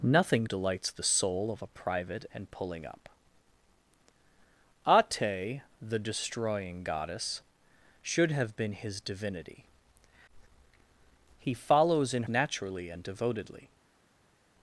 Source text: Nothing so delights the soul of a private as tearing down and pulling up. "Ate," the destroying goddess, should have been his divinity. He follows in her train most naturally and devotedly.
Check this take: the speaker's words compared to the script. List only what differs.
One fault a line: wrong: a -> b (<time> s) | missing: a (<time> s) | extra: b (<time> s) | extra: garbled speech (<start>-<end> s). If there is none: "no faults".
missing: so (0.5 s)
missing: as tearing down (2.3 s)
missing: her train most (12.2 s)